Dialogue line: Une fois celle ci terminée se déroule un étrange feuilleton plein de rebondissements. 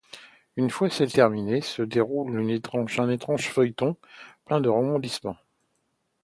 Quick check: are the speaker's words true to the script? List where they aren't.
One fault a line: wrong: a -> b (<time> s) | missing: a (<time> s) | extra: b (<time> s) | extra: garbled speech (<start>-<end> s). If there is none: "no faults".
missing: ci (1.1 s)